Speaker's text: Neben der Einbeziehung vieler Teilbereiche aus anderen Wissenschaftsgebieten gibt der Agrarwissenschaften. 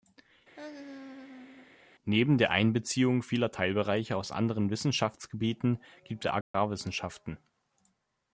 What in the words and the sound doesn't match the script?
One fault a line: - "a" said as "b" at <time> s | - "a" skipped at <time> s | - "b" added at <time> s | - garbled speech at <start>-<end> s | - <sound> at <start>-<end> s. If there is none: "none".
- laugh at 0.5-1.8 s
- dropout at 6.4-6.5 s